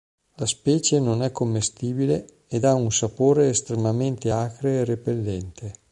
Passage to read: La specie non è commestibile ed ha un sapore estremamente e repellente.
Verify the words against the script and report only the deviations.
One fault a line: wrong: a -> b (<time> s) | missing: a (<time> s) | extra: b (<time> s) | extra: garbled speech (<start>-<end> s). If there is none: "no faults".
extra: acre (4.3 s)